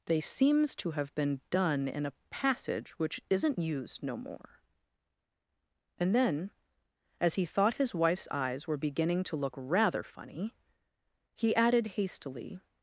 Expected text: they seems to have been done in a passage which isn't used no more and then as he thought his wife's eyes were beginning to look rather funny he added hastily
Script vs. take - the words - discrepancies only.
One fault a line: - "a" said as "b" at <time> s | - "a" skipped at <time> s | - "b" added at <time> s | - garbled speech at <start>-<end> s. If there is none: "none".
none